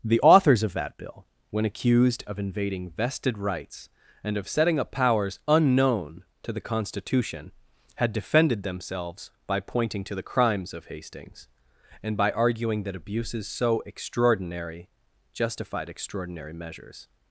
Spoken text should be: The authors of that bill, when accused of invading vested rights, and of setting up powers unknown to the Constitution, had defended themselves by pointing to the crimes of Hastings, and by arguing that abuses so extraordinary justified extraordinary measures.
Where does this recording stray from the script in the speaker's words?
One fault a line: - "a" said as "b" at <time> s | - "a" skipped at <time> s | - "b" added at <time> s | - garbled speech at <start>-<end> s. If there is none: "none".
none